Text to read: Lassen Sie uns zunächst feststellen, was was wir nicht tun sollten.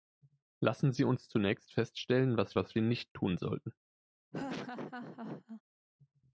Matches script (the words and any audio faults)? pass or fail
fail